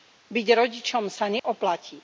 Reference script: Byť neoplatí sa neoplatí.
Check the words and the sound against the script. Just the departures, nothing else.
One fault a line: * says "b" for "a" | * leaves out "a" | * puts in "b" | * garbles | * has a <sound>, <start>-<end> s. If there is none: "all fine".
* says "rodičom" for "neoplatí"
* has a dropout, 1.4-1.4 s